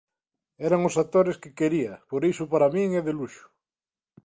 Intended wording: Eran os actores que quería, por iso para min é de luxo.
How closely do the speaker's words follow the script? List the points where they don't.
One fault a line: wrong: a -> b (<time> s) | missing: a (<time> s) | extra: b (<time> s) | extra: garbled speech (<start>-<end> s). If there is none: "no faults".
no faults